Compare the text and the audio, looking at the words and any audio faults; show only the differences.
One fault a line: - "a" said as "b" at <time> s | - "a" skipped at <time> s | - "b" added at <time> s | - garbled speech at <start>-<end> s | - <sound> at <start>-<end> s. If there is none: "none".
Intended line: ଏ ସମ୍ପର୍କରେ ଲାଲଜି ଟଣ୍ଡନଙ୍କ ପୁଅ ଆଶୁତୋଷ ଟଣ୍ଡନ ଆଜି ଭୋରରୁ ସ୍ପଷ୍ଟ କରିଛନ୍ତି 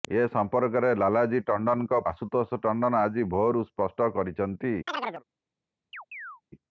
- "ପୁଅ" skipped at 2.0 s
- chirp at 4.9-5.2 s
- chirp at 5.9-6.4 s